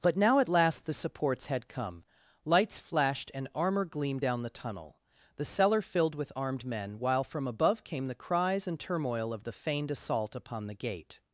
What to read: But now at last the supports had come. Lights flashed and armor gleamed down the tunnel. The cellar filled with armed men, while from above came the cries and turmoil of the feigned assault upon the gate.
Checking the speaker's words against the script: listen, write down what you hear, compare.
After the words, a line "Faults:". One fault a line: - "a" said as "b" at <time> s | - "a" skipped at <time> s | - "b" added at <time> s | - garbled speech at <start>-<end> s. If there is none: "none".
But now at last the supports had come. Lights flashed and armor gleamed down the tunnel. The cellar filled with armed men, while from above came the cries and turmoil of the feigned assault upon the gate.
Faults:
none